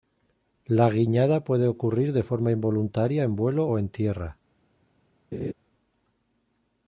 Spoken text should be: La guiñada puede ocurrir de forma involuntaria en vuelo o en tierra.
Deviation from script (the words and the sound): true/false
true